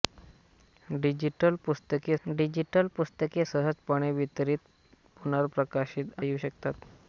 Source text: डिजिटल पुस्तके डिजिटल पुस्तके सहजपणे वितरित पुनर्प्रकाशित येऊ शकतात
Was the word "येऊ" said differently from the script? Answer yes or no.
no